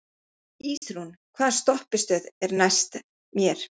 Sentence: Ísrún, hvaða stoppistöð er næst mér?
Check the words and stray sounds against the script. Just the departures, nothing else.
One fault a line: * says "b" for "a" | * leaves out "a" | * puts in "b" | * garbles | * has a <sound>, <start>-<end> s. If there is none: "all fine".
* has a dropout, 0.8-0.8 s